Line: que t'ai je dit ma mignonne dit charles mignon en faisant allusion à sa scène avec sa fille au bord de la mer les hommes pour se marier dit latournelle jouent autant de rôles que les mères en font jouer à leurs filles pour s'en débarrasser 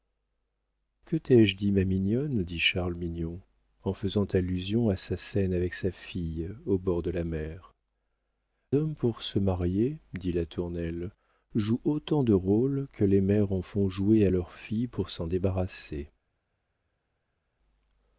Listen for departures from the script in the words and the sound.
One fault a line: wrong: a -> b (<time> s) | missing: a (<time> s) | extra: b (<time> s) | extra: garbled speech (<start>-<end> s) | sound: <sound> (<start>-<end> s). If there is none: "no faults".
missing: les (7.8 s)